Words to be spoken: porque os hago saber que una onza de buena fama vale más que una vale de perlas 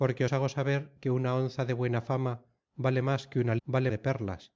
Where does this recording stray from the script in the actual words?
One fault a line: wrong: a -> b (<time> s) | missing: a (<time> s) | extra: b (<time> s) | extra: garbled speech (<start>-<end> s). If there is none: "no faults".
no faults